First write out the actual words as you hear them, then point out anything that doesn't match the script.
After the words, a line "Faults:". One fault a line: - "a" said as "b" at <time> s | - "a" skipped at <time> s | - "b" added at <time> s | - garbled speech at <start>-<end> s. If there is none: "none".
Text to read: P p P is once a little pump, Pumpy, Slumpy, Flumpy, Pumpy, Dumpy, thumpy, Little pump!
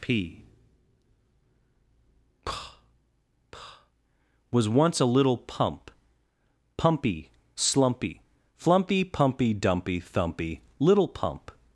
P p P was once a little pump, Pumpy, Slumpy, Flumpy, Pumpy, Dumpy, thumpy, Little pump!
Faults:
- "is" said as "was" at 4.5 s